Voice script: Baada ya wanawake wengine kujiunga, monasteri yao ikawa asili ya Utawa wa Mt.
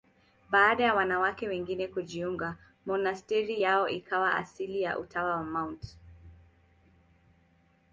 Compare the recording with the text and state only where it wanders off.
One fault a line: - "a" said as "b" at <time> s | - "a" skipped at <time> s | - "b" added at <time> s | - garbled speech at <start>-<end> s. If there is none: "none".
none